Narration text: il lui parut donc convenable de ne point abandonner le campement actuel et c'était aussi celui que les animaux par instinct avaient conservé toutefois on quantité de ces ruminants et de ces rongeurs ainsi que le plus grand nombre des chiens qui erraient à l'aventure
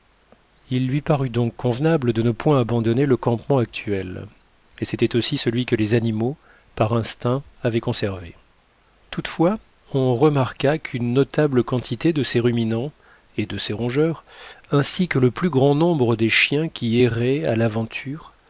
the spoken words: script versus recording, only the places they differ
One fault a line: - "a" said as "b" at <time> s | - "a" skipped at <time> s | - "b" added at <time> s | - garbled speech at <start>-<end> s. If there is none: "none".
- "remarqua qu'une notable" added at 10.1 s